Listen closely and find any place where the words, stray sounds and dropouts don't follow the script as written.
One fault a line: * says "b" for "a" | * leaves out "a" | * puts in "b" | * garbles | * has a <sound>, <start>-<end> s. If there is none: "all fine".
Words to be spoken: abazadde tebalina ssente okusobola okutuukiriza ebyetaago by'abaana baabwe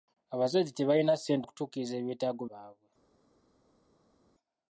* leaves out "okusobola"
* leaves out "by'abaana"